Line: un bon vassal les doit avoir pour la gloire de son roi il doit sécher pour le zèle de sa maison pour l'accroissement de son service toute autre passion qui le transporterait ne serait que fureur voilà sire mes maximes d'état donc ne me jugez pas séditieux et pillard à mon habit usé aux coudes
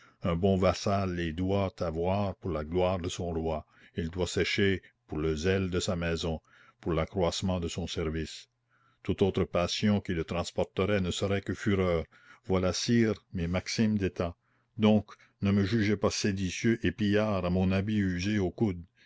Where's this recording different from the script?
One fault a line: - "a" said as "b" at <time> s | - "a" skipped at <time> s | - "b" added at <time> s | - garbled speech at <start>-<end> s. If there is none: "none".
none